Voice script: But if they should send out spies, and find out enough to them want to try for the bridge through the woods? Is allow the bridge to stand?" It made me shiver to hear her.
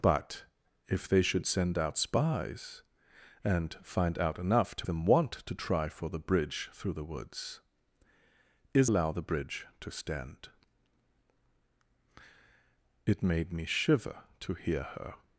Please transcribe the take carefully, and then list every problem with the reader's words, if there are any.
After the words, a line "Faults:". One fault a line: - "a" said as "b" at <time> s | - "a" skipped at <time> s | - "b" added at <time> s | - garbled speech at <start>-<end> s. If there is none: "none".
But if they should send out spies, and find out enough to them want to try for the bridge through the woods? Is allow the bridge to stand?" It made me shiver to hear her.
Faults:
none